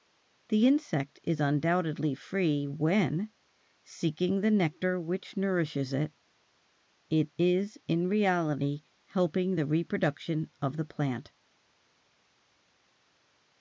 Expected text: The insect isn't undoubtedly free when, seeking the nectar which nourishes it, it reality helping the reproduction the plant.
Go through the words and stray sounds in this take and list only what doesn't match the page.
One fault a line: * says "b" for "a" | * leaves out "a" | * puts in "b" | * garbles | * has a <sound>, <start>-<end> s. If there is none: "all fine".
* says "is" for "isn't"
* puts in "is in"
* puts in "of"